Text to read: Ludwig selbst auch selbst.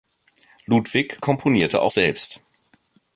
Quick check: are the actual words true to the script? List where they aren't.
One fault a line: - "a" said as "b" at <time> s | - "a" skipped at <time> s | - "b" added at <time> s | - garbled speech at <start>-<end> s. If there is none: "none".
- "selbst" said as "komponierte" at 1.2 s